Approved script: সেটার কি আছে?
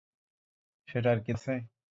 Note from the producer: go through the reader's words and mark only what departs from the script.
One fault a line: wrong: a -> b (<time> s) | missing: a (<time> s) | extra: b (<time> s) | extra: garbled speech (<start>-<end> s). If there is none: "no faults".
no faults